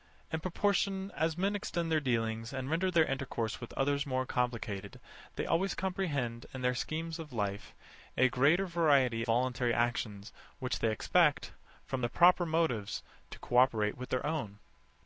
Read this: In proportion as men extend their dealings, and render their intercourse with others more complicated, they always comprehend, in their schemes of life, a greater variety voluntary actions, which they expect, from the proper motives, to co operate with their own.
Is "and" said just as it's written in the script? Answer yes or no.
yes